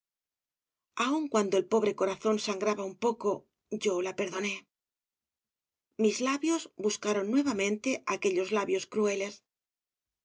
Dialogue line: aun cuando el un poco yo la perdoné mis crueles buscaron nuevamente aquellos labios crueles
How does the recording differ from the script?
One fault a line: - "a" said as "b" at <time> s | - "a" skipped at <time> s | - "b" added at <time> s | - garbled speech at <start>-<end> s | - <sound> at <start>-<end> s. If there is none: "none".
- "pobre corazón sangraba" added at 1.7 s
- "crueles" said as "labios" at 6.3 s